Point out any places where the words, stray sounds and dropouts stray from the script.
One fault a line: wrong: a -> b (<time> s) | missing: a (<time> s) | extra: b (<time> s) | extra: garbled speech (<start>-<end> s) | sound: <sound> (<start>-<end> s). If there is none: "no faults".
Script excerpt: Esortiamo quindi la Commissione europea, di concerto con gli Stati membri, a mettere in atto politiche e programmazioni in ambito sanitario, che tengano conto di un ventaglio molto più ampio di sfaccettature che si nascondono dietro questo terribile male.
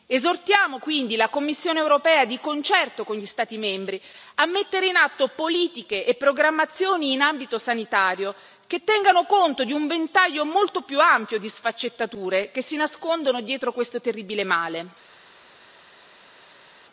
no faults